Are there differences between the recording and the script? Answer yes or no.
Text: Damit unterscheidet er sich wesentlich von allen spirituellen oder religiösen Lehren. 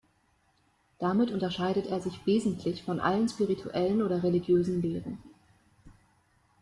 no